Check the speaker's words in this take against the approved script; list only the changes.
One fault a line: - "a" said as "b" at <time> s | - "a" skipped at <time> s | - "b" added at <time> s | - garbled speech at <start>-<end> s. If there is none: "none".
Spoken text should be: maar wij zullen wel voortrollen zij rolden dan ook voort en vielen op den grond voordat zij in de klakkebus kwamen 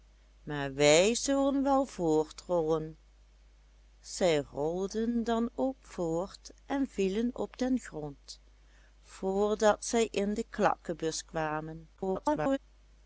- garbled speech at 12.0-12.6 s